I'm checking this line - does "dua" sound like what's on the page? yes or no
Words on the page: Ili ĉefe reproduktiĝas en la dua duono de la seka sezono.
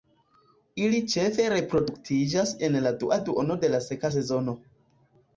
yes